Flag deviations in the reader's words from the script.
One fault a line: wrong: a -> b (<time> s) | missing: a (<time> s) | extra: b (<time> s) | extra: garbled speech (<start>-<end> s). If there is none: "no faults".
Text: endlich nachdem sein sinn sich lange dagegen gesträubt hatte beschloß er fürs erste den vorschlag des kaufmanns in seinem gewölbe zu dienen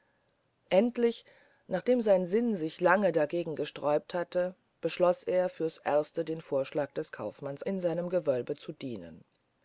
no faults